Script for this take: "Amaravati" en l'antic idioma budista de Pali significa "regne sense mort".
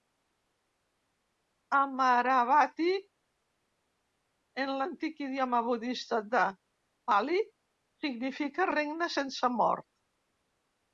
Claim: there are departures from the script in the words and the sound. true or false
false